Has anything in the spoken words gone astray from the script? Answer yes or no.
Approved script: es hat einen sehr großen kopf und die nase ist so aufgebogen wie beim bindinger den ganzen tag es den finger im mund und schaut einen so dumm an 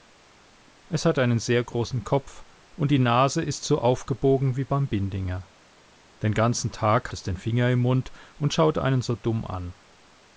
no